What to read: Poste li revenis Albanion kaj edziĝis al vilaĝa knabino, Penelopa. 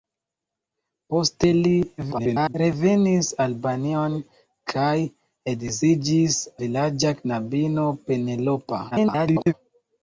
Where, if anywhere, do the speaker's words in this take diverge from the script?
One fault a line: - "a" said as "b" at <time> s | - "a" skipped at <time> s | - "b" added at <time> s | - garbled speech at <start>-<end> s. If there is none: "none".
- garbled speech at 2.0-2.5 s
- "al" skipped at 6.4 s
- garbled speech at 8.9-9.5 s